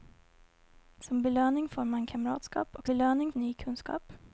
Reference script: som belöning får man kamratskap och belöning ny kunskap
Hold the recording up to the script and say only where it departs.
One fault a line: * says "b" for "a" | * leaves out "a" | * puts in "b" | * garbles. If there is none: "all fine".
all fine